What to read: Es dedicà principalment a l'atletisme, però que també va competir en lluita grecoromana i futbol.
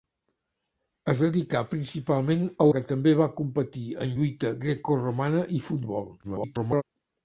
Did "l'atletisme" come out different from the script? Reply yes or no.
yes